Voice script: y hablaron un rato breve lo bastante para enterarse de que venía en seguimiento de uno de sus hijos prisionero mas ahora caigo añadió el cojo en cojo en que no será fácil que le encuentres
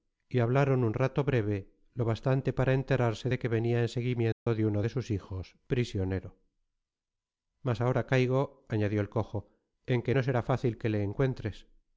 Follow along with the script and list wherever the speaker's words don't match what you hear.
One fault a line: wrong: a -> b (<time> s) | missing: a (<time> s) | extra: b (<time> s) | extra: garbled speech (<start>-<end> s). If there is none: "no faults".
missing: cojo en (10.0 s)